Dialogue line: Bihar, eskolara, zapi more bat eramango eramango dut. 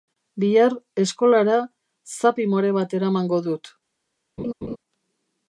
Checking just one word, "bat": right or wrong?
right